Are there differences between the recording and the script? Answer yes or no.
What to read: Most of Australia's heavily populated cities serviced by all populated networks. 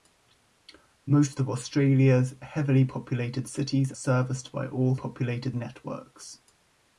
no